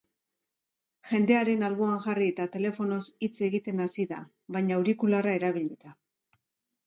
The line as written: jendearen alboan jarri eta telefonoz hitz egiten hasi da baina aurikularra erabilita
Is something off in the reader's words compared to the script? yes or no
no